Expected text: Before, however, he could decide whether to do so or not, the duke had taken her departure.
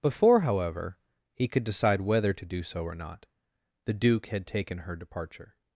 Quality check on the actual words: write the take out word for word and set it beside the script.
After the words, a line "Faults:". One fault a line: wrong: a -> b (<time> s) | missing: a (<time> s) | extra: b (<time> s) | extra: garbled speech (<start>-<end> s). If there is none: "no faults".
Before, however, he could decide whether to do so or not, the duke had taken her departure.
Faults:
no faults